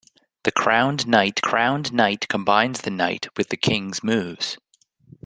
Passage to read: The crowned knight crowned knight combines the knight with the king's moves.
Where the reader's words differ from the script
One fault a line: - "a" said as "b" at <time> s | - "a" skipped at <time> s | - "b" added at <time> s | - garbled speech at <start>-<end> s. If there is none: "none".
none